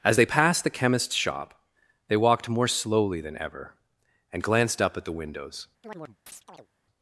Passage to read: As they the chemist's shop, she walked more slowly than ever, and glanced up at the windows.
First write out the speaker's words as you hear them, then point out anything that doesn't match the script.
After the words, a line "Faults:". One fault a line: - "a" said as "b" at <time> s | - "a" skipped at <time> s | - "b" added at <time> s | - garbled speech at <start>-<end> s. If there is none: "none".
As they passed the chemist's shop, they walked more slowly than ever, and glanced up at the windows.
Faults:
- "passed" added at 0.2 s
- "she" said as "they" at 2.1 s